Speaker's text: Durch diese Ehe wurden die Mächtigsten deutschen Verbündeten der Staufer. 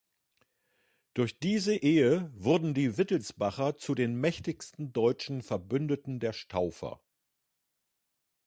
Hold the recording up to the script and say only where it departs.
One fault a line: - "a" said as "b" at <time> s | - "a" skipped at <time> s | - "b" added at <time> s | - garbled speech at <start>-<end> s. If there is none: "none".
- "Wittelsbacher zu den" added at 3.0 s